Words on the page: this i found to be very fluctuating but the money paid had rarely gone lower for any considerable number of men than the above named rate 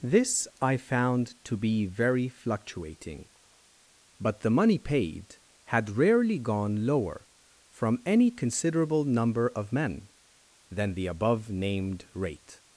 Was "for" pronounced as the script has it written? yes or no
no